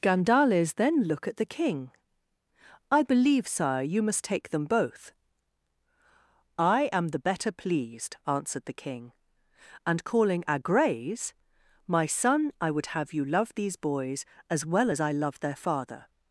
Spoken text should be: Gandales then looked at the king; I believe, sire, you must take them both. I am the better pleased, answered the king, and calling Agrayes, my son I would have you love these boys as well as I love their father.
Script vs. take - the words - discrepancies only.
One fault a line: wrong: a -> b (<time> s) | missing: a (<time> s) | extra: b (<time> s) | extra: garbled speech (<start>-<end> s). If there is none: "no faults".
wrong: looked -> look (1.0 s)